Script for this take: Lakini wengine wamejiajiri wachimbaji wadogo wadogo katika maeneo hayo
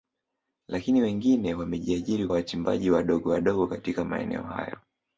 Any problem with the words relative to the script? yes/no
no